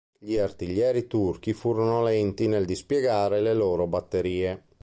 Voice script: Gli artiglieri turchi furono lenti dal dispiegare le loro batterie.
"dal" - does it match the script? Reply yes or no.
no